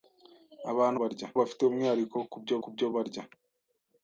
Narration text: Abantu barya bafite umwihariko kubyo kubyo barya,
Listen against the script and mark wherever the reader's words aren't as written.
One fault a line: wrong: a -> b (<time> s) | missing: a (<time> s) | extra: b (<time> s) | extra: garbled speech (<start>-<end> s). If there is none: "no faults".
no faults